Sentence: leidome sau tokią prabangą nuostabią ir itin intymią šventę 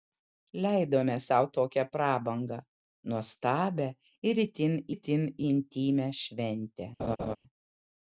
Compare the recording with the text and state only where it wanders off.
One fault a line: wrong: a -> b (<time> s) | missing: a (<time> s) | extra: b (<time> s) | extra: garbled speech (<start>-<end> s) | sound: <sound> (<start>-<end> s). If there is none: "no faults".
extra: itin (5.0 s)
sound: laugh (7.0-7.4 s)